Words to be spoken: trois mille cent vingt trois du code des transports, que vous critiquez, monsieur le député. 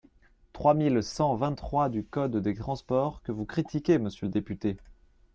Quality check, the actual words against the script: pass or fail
pass